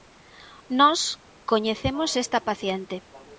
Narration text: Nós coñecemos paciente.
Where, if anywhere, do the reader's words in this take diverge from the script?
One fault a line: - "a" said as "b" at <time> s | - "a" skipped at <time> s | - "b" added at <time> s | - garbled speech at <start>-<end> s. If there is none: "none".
- "esta" added at 2.2 s